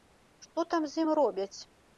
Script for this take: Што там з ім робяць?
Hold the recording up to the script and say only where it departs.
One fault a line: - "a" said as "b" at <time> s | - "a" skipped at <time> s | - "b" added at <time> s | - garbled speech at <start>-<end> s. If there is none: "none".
none